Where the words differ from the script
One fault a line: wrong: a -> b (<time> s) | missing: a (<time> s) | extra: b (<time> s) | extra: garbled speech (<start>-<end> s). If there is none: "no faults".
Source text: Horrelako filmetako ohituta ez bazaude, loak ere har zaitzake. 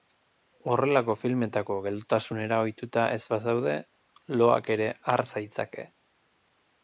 extra: geldotasunera (1.9 s)